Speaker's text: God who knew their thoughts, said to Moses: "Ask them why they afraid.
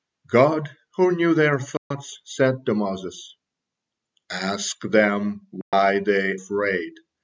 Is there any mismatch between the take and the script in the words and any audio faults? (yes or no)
yes